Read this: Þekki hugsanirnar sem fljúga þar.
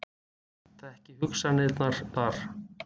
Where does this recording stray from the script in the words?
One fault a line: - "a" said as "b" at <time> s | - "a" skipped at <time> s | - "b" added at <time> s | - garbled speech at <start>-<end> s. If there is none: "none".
- "sem fljúga" skipped at 2.0 s